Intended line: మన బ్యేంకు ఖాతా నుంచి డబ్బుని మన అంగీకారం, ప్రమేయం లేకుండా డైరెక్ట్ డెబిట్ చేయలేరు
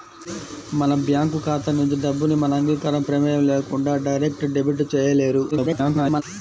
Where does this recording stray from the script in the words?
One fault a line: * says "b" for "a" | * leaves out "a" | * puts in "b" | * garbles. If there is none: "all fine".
* garbles